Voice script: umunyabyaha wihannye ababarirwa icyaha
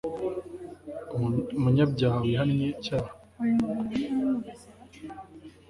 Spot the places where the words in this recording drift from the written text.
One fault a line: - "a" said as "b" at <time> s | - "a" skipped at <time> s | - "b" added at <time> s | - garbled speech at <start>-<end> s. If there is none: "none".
- "ababarirwa" skipped at 2.7 s